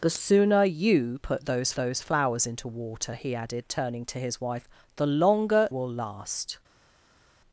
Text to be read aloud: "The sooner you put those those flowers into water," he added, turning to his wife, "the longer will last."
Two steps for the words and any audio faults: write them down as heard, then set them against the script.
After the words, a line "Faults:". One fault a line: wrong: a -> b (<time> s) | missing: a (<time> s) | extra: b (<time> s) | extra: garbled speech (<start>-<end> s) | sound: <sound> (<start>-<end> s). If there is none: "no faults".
"The sooner you put those those flowers into water," he added, turning to his wife, "the longer will last."
Faults:
no faults